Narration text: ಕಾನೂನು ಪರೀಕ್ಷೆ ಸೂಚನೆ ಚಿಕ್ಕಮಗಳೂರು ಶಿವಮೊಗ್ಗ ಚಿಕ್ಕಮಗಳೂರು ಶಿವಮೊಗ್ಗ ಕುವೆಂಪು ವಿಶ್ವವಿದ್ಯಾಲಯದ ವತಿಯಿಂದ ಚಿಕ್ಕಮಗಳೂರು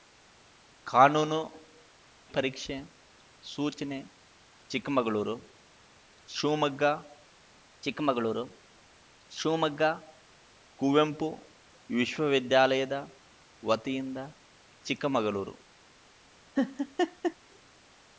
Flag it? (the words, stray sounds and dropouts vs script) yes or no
yes